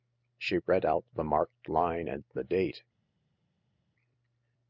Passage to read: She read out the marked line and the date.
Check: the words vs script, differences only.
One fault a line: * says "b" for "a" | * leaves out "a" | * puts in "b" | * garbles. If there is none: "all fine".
all fine